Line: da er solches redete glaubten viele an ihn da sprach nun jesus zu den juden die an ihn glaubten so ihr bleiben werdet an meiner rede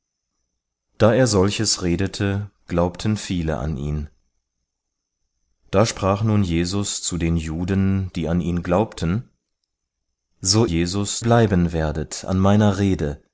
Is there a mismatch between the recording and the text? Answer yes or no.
yes